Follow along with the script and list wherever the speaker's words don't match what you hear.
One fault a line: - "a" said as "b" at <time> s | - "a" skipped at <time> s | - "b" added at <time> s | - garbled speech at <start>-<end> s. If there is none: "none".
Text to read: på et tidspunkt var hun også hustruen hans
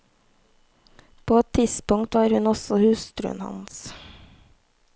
none